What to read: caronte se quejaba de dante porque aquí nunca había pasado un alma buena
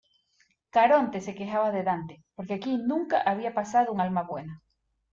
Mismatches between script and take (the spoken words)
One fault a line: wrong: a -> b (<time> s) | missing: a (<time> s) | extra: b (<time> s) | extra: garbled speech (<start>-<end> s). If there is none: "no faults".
no faults